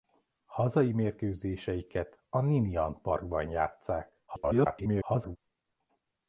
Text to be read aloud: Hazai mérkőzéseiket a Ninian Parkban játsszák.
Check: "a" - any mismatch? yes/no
no